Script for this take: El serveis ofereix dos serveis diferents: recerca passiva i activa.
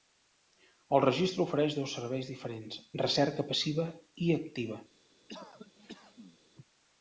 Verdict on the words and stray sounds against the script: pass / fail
fail